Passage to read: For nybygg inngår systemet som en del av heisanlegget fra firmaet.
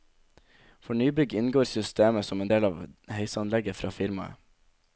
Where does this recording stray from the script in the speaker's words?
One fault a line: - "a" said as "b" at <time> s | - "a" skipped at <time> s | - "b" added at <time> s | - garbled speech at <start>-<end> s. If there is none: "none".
none